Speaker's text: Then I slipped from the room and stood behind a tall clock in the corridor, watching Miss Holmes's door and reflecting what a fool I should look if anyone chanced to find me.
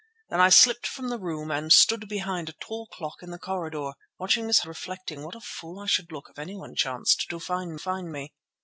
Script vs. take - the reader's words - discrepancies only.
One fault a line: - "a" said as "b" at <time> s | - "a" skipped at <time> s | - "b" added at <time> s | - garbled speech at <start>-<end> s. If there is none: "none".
- "Holmes's door and" skipped at 4.6 s
- "find" added at 7.8 s